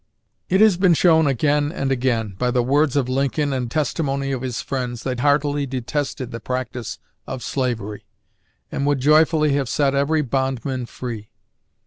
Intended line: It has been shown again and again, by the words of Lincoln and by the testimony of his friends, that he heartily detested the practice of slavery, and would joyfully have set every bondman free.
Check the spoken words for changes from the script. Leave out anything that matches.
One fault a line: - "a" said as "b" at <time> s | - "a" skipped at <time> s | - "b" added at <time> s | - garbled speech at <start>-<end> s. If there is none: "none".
- "by the" skipped at 3.7 s
- "he" skipped at 5.2 s